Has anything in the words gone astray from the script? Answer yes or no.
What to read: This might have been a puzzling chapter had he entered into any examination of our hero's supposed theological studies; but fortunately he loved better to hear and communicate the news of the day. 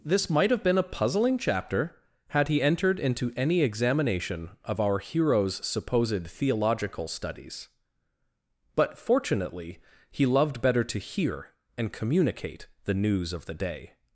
no